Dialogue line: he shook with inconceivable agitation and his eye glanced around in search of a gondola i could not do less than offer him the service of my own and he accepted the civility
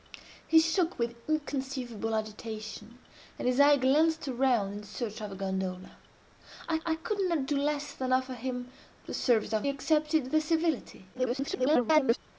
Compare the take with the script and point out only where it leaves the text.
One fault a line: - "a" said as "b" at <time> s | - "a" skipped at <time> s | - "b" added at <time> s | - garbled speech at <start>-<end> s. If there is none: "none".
- "i" added at 6.8 s
- "my own and" skipped at 9.7 s
- garbled speech at 11.1-12.2 s